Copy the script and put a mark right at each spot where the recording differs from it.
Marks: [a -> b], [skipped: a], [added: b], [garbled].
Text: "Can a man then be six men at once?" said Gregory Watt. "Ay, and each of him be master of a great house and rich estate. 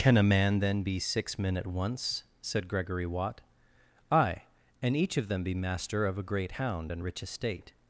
"Can a man then be six men at once?" said Gregory Watt. "Ay, and each of [him -> them] be master of a great [house -> hound] and rich estate.